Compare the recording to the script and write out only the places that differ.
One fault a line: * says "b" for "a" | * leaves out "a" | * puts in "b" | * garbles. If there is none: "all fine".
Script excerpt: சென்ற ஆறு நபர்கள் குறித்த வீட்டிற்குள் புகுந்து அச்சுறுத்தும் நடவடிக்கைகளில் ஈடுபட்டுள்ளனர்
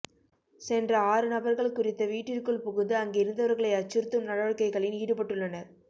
* puts in "அங்கிருந்தவர்களை"